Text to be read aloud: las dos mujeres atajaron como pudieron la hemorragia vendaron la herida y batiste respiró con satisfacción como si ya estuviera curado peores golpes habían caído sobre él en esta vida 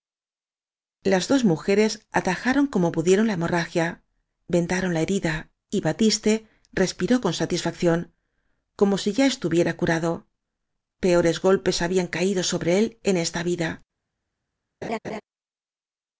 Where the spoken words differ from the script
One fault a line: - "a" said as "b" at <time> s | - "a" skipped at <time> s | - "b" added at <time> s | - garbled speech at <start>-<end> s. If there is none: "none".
none